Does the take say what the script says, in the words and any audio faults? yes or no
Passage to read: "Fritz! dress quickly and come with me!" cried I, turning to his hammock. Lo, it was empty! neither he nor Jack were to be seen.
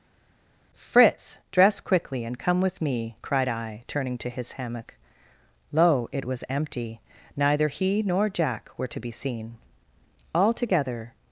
no